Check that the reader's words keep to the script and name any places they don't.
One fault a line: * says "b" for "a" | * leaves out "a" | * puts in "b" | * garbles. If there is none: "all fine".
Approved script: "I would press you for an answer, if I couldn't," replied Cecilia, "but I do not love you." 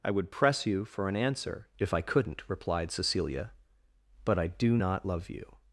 all fine